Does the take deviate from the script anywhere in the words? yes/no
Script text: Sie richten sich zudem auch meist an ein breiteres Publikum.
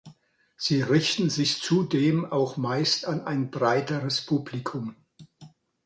no